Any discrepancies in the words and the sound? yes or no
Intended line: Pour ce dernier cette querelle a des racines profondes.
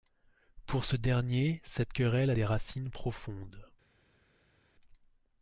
no